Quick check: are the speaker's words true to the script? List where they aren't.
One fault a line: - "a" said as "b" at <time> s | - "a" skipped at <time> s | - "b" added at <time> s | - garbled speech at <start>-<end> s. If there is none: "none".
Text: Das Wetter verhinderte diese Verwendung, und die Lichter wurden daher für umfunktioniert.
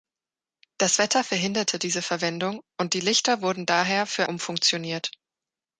none